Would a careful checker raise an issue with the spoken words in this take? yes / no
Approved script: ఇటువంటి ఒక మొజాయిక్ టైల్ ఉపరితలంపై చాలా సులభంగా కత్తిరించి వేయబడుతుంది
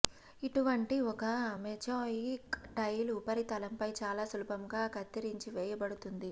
no